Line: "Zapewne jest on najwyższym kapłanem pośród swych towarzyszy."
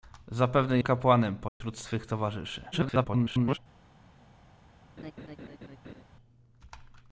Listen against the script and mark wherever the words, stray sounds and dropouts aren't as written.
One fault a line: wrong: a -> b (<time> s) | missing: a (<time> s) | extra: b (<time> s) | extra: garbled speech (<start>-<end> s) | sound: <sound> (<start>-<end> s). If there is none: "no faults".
missing: jest on najwyższym (0.8 s)
sound: dropout (1.5-1.6 s)
extra: garbled speech (2.7-3.6 s)
sound: laugh (5.0-6.0 s)